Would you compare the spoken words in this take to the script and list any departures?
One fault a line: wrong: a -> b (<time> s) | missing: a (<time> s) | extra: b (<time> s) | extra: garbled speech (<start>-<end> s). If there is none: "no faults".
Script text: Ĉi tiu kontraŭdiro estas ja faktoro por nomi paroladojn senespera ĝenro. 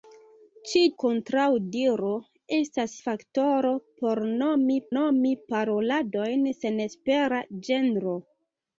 missing: tiu (0.8 s)
missing: ja (2.9 s)
extra: nomi (5.0 s)